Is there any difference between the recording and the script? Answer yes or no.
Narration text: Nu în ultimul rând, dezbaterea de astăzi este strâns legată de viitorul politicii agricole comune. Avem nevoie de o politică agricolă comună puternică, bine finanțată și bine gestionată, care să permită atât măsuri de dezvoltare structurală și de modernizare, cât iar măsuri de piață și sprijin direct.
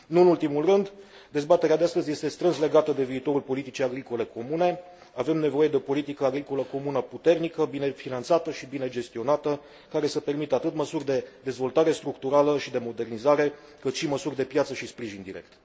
yes